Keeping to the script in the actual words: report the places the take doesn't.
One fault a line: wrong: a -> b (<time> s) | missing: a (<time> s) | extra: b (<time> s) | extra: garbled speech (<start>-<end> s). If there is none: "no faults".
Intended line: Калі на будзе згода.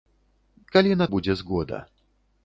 no faults